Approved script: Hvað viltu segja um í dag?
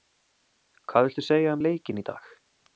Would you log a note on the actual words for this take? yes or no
yes